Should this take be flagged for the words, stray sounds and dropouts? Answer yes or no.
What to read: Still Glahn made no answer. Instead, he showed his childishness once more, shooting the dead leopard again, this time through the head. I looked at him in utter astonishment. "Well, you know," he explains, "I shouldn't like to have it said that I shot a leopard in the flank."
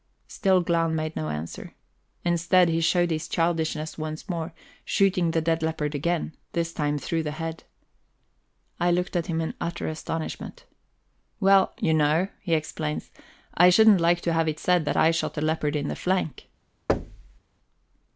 yes